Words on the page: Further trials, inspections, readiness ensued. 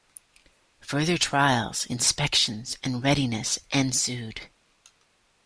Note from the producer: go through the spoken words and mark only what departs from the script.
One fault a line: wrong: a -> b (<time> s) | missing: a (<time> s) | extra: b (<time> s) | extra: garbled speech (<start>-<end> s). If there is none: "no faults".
extra: and (2.8 s)